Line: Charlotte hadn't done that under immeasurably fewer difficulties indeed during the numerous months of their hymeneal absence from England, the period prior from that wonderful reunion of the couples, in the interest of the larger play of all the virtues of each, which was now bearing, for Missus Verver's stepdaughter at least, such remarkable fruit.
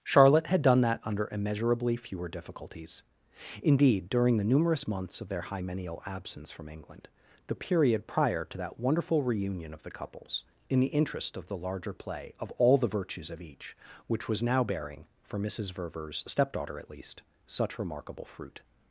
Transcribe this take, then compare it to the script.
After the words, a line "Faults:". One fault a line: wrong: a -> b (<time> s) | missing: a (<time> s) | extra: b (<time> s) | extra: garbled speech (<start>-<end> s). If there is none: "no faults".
Charlotte had done that under immeasurably fewer difficulties indeed during the numerous months of their hymeneal absence from England, the period prior to that wonderful reunion of the couples, in the interest of the larger play of all the virtues of each, which was now bearing, for Missus Verver's stepdaughter at least, such remarkable fruit.
Faults:
wrong: hadn't -> had (0.5 s)
wrong: from -> to (8.4 s)